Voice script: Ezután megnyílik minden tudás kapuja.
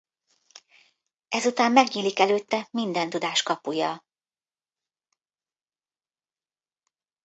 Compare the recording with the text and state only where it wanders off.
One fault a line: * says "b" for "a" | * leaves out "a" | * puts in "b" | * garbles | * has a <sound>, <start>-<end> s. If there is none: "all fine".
* puts in "előtte"